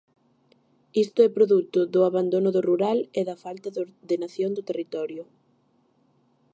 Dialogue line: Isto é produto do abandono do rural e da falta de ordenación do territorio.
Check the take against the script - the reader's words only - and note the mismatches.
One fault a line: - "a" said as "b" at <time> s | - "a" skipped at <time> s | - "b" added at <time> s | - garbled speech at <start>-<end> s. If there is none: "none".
none